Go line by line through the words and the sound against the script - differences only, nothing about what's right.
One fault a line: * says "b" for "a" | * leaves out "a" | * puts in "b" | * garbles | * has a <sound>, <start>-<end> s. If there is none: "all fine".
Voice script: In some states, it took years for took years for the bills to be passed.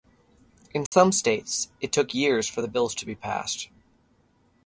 * has a dropout, 0.9-0.9 s
* leaves out "took years for"